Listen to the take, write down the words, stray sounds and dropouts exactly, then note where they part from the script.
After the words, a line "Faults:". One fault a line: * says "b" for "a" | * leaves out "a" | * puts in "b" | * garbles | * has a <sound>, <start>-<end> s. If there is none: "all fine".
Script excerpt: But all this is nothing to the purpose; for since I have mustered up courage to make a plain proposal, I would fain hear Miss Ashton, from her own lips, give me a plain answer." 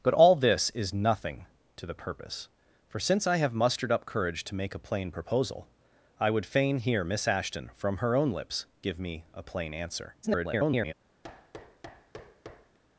But all this is nothing to the purpose; for since I have mustered up courage to make a plain proposal, I would fain hear Miss Ashton, from her own lips, give me a plain answer." [garbled]
Faults:
* garbles
* has a thud, 11.2-12.8 s